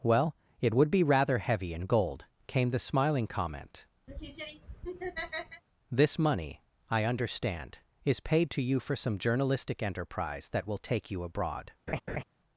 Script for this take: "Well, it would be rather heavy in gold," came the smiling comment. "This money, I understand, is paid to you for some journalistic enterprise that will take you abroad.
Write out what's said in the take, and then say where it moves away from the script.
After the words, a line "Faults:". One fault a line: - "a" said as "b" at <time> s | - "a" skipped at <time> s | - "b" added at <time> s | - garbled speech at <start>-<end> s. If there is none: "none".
"Well, it would be rather heavy in gold," came the smiling comment. "This money, I understand, is paid to you for some journalistic enterprise that will take you abroad.
Faults:
none